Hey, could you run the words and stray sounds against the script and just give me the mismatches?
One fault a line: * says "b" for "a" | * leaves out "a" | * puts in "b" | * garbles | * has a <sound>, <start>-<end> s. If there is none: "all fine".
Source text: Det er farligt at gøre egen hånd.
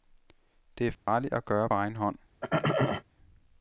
* has a dropout, 0.9-1.1 s
* has a throat clearing, 2.4-3.0 s